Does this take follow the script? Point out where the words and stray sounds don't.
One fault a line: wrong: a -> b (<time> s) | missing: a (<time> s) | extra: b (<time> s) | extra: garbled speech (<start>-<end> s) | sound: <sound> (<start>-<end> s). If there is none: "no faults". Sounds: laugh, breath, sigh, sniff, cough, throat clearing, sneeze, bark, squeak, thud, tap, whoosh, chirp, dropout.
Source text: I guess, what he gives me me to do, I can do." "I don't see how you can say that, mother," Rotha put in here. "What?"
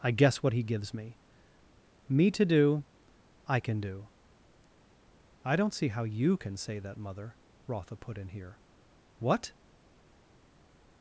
no faults